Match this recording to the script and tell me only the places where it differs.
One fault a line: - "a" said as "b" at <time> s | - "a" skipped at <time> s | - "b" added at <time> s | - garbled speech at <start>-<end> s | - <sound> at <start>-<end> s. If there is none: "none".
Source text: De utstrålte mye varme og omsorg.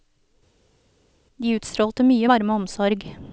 none